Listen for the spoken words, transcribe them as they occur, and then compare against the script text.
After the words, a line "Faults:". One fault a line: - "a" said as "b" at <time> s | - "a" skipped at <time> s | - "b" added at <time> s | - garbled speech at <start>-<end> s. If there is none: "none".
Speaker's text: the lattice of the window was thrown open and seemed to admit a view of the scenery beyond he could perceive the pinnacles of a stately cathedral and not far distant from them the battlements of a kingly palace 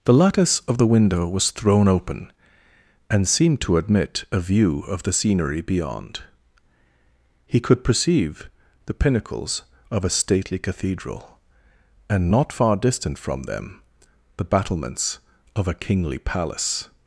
the lattice of the window was thrown open and seemed to admit a view of the scenery beyond he could perceive the pinnacles of a stately cathedral and not far distant from them the battlements of a kingly palace
Faults:
none